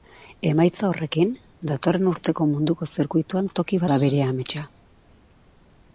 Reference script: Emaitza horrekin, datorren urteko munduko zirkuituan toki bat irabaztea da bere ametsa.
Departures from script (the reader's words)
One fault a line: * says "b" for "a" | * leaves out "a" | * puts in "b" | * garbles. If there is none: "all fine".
* leaves out "bat irabaztea"